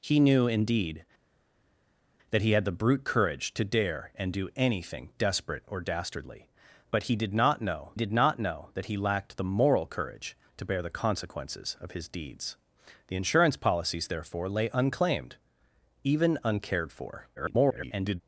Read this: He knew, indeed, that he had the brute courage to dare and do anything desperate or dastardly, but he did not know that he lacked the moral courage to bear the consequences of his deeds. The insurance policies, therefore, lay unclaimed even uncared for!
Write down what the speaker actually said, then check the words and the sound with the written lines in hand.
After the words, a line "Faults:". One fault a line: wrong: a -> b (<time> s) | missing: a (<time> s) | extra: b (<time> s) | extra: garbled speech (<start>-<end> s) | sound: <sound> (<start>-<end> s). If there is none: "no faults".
He knew, indeed, that he had the brute courage to dare and do anything desperate or dastardly, but he did not know did not know that he lacked the moral courage to bear the consequences of his deeds. The insurance policies, therefore, lay unclaimed even uncared for! [garbled]
Faults:
extra: did not know (7.9 s)
extra: garbled speech (17.4-18.2 s)